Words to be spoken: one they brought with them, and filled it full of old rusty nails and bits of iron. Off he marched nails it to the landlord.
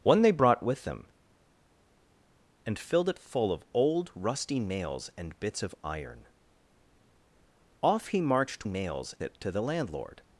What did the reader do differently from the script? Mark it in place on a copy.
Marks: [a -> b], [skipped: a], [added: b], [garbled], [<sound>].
one they brought with them, and filled it full of old rusty nails and bits of iron. Off he marched nails it to the landlord.